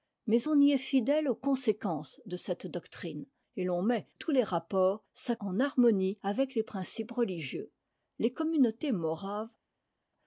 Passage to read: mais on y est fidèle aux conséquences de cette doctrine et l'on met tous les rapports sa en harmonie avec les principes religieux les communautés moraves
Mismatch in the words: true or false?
false